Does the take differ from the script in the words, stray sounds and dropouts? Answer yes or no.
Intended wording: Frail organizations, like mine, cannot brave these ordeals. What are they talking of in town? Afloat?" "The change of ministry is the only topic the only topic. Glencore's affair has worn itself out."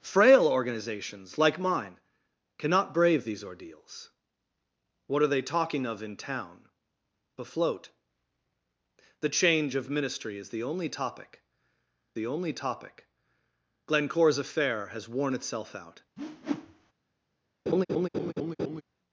yes